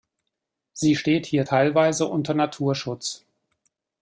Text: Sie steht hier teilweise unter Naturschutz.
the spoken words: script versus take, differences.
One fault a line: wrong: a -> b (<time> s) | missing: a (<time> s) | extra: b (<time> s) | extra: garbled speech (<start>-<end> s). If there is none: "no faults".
no faults